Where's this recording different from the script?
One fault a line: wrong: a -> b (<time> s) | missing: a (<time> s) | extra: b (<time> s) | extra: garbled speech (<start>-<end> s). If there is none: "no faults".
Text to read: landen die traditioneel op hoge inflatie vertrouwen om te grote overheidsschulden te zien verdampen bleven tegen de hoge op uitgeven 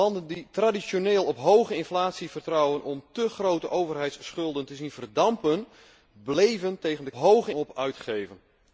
no faults